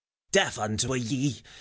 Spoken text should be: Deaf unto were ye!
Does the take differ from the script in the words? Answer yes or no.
no